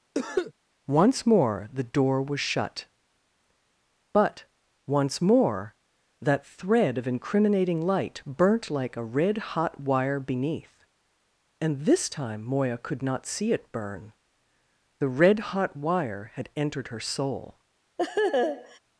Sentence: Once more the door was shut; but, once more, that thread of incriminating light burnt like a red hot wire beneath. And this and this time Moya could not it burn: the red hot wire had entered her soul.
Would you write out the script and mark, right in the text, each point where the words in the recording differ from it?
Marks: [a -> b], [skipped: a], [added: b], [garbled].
Once more the door was shut; but, once more, that thread of incriminating light burnt like a red hot wire beneath. And this [skipped: and this] time Moya could not [added: see] it burn: the red hot wire had entered her soul.